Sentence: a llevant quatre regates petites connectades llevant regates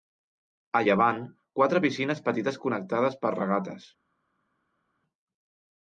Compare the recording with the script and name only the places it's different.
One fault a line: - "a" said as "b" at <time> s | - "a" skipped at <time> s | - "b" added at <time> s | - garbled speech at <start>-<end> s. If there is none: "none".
- "regates" said as "piscines" at 1.9 s
- "llevant" said as "per" at 3.2 s